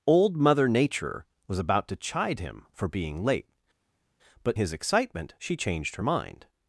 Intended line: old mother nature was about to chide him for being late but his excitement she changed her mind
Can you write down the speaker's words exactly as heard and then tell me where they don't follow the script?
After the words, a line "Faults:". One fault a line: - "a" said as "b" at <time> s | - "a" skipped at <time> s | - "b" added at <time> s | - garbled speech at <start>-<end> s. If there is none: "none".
old mother nature was about to chide him for being late but his excitement she changed her mind
Faults:
none